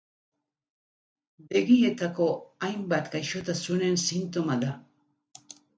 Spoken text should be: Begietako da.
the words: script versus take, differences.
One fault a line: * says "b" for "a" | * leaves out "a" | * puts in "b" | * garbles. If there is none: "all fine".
* puts in "hainbat gaixotasunen sintoma"